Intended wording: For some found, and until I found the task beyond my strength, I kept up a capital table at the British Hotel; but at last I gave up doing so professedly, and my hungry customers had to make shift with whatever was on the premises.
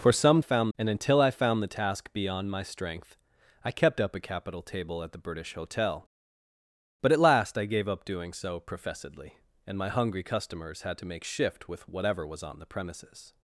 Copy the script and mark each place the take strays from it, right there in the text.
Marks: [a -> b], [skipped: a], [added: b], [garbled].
For some found, and until I found the task beyond my strength, I kept up a capital table at the British Hotel; but at last I gave up doing so professedly, and my hungry customers had to make shift with whatever was on the premises.